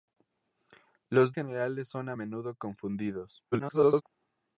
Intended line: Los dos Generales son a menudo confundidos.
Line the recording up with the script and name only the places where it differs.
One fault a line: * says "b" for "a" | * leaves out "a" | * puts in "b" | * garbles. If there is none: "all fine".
* leaves out "dos"
* garbles